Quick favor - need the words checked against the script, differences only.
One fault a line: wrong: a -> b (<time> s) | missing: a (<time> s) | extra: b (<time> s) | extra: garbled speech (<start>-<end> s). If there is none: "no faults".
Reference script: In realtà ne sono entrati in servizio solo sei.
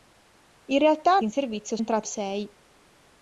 missing: ne sono entrati (1.2 s)
wrong: solo -> entrati (1.8 s)